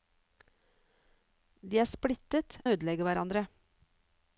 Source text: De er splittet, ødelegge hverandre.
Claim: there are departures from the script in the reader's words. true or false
false